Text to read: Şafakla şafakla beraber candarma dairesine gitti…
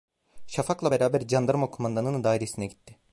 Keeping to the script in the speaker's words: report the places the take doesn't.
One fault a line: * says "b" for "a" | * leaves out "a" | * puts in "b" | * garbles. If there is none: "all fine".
* leaves out "şafakla"
* puts in "kumandanının"